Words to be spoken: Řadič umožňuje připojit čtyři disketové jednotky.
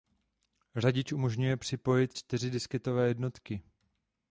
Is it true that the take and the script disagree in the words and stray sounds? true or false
false